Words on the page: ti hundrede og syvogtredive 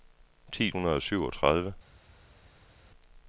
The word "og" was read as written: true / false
true